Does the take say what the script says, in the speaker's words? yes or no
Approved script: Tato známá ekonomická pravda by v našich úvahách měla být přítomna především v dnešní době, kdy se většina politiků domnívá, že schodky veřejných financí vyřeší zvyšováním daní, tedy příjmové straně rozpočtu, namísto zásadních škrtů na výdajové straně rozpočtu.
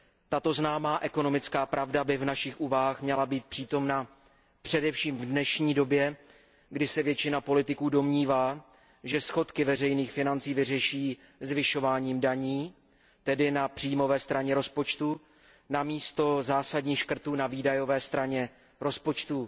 no